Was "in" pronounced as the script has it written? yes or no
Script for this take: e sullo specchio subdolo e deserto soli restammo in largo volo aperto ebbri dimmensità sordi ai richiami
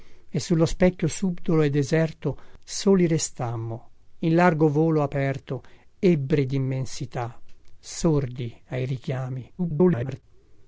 yes